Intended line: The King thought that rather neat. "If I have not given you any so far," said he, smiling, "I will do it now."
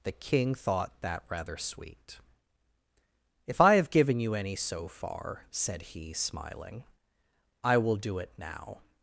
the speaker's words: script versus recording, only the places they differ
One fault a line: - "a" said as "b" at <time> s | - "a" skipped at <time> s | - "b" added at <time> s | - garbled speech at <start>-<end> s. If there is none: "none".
- "neat" said as "sweet" at 1.6 s
- "not" skipped at 3.9 s